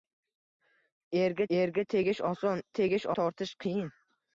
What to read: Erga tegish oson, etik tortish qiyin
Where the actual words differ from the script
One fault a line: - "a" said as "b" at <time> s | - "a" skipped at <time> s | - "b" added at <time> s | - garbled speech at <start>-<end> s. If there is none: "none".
- "erga" added at 1.6 s
- "etik" said as "tegish" at 2.8 s